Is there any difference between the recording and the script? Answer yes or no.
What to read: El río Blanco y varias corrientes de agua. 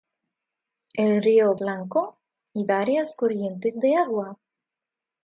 no